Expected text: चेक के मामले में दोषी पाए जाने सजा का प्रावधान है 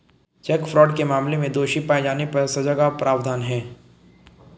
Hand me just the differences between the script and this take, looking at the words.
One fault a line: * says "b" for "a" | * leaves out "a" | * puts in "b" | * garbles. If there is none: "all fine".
* puts in "फ्रॉड"
* puts in "पर"